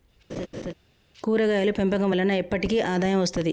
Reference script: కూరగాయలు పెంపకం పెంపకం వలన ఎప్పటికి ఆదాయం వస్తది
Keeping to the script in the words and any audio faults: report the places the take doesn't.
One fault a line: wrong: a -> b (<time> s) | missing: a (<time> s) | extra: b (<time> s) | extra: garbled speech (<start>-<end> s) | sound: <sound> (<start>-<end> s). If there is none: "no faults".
sound: laugh (0.3-0.7 s)
missing: పెంపకం (2.1 s)